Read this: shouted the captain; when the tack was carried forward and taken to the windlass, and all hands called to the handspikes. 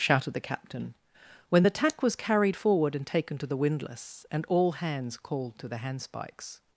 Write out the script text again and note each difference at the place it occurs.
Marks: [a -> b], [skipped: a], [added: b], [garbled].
shouted the captain; when the tack was carried forward and taken to the windlass, and all hands called to the handspikes.